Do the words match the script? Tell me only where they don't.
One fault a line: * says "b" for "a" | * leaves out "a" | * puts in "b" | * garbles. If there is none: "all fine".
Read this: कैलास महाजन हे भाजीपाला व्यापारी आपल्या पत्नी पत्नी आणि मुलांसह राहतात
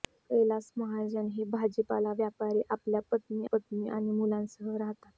all fine